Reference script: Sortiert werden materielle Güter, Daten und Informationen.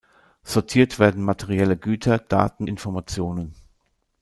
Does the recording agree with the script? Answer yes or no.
no